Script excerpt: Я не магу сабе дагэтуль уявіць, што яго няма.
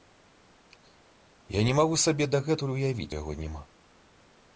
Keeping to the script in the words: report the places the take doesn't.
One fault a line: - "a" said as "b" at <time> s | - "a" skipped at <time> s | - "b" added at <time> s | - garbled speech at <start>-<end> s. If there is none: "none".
- "што" skipped at 3.1 s